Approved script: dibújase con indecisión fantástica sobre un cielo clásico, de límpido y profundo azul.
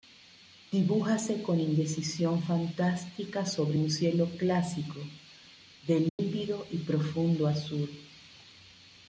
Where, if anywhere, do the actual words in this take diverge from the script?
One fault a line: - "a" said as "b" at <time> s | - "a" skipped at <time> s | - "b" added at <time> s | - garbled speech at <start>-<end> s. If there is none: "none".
none